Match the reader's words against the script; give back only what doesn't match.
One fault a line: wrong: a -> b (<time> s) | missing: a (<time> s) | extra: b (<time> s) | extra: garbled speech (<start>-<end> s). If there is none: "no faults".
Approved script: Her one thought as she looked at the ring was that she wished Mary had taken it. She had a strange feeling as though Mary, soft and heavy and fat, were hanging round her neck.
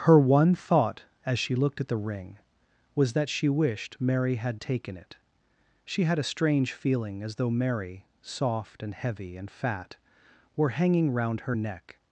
no faults